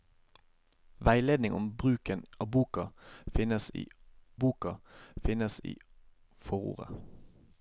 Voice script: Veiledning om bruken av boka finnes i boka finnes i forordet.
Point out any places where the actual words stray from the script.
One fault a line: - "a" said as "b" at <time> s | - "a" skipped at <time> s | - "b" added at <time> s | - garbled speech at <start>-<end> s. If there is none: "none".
none